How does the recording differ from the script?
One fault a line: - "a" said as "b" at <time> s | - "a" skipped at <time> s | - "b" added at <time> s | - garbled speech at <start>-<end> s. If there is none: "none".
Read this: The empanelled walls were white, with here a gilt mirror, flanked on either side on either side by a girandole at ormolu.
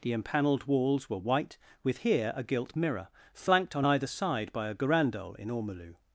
- "on either side" skipped at 4.5 s
- "at" said as "in" at 5.4 s